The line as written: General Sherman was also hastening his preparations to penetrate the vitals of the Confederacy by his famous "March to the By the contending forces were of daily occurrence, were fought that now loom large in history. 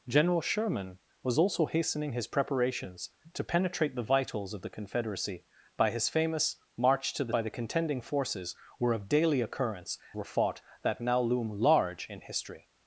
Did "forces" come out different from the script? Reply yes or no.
no